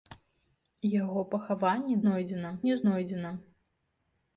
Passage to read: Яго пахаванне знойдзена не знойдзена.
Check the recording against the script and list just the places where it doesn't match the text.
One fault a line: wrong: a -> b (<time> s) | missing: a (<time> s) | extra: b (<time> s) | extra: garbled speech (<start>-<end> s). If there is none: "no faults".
no faults